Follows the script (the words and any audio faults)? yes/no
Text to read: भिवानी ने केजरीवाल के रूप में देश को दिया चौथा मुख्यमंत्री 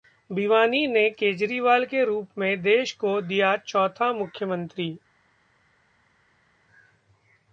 yes